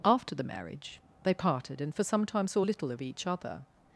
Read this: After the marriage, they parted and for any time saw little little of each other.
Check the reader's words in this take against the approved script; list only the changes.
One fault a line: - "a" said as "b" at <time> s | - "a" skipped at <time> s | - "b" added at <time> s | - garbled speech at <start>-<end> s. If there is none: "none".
- "any" said as "some" at 2.0 s
- "little" skipped at 2.9 s